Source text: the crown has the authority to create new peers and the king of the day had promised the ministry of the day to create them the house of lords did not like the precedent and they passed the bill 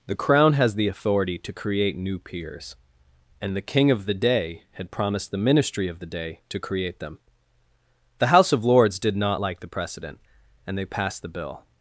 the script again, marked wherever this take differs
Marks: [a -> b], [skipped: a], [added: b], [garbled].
the crown has the authority to create new peers and the king of the day had promised the ministry of the day to create them the house of lords did not like the precedent and they passed the bill